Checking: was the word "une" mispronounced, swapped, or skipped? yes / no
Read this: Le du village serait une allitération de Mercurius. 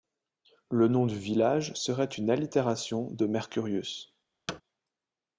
no